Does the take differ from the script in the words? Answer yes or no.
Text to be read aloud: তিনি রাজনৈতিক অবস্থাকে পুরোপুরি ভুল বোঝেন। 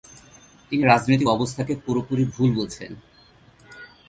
no